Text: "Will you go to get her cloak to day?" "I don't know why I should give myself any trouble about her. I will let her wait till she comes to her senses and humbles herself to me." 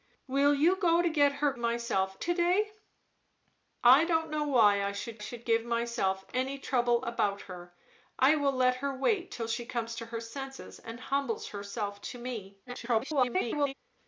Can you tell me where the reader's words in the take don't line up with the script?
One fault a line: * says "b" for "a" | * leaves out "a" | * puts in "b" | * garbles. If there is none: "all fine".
* says "myself" for "cloak"
* puts in "should"
* garbles